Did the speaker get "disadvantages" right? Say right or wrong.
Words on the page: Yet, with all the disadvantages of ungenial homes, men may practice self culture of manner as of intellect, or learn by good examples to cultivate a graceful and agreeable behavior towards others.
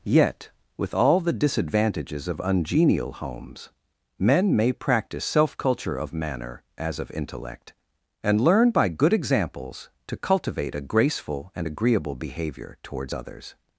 right